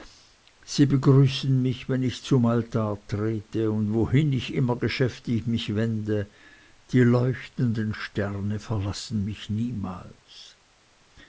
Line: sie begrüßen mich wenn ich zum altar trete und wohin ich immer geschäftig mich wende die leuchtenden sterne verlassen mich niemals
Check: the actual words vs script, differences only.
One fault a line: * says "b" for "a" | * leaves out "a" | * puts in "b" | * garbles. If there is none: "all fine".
all fine